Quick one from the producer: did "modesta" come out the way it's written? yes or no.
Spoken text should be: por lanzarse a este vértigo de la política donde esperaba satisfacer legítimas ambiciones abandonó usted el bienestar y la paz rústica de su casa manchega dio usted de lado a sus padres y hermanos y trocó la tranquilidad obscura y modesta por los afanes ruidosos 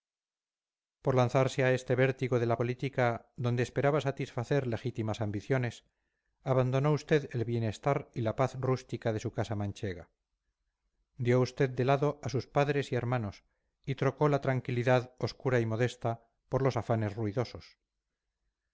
yes